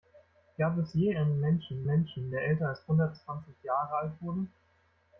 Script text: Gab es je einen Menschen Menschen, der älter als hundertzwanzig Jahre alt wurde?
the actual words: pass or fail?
pass